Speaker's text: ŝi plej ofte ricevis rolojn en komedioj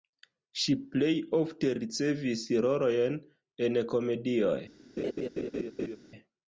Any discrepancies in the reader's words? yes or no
no